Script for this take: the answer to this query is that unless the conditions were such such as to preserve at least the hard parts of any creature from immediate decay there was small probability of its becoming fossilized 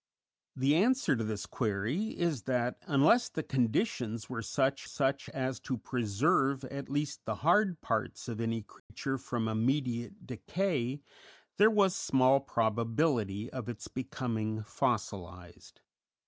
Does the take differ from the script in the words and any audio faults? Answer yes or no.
yes